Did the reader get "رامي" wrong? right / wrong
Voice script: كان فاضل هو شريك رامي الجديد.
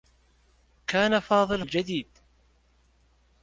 wrong